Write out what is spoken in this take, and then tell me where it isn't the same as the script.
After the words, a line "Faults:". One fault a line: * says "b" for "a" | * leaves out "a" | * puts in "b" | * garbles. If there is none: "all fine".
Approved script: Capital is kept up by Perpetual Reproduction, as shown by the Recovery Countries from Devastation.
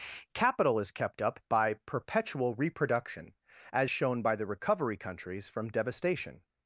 Capital is kept up by Perpetual Reproduction, as shown by the Recovery Countries from Devastation.
Faults:
all fine